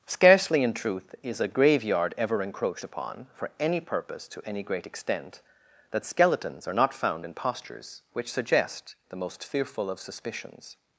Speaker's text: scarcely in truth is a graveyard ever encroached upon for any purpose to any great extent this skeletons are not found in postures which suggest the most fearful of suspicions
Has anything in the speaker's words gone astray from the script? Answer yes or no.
yes